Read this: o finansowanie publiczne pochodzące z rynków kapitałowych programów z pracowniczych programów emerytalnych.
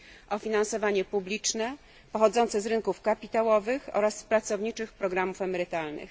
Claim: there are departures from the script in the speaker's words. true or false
true